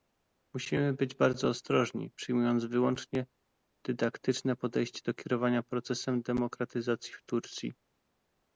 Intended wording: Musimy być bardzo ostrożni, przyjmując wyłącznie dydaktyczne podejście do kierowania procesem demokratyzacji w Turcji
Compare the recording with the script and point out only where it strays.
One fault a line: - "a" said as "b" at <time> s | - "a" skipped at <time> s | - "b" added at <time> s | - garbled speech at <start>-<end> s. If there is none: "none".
none